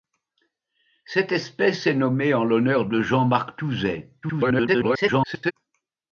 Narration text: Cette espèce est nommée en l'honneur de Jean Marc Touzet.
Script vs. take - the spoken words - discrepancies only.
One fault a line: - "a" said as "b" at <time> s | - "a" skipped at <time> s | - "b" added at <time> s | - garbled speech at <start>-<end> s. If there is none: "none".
- garbled speech at 4.2-5.5 s